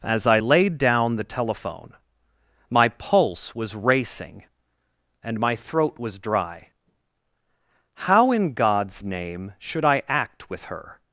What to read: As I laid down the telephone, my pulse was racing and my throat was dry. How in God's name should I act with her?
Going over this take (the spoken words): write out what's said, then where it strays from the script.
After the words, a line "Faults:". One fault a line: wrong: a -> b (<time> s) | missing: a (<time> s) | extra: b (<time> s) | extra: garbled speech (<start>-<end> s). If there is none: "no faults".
As I laid down the telephone, my pulse was racing and my throat was dry. How in God's name should I act with her?
Faults:
no faults